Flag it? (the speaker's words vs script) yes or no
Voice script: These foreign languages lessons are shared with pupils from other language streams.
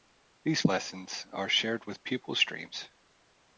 yes